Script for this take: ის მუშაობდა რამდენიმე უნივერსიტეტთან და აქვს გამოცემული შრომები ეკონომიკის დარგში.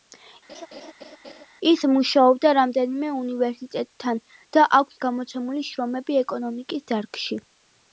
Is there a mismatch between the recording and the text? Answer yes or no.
no